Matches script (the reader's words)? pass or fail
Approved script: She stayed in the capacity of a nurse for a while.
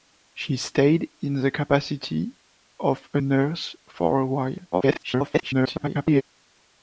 fail